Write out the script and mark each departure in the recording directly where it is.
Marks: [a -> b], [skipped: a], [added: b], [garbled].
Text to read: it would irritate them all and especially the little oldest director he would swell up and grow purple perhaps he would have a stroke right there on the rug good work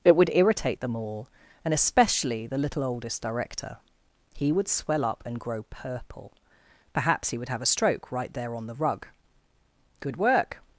it would irritate them all and especially the little oldest director he would swell up and grow purple perhaps he would have a stroke right there on the rug good work